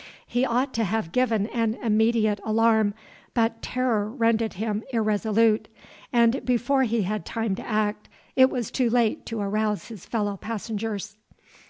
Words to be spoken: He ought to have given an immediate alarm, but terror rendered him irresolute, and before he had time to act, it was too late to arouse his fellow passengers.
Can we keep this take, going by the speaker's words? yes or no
yes